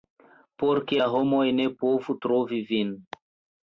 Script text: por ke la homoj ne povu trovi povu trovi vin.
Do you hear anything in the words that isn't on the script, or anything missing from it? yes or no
yes